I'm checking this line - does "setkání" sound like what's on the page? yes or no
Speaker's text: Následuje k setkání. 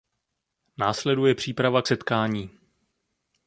yes